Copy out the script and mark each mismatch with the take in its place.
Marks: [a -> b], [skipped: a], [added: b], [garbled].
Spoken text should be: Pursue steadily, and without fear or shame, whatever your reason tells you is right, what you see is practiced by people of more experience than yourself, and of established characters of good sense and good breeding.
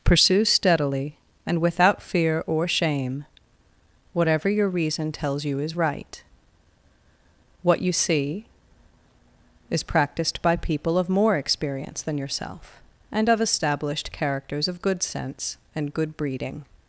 Pursue steadily, and without fear or shame, whatever your reason tells you is right, what you see is practiced by people of more experience than yourself, and of established characters of good sense and good breeding.